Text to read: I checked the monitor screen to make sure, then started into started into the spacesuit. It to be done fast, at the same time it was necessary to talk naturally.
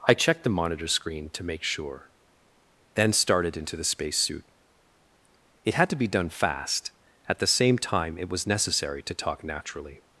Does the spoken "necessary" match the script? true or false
true